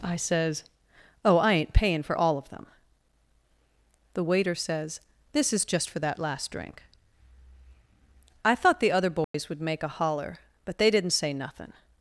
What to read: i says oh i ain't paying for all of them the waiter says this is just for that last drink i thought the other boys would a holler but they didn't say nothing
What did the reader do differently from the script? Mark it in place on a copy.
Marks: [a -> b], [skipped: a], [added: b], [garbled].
i says oh i ain't paying for all of them the waiter says this is just for that last drink i thought the other boys would [added: make] a holler but they didn't say nothing